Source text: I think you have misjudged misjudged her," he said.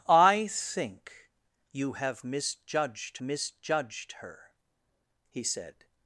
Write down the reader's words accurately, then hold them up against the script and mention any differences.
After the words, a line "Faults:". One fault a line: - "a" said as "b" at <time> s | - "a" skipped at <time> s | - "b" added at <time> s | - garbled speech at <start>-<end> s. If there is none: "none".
I think you have misjudged misjudged her," he said.
Faults:
none